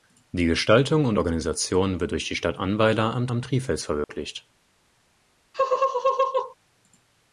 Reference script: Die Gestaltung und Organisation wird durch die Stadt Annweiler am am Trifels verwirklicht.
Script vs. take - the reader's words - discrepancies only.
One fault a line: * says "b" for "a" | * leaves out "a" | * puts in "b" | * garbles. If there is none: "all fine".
all fine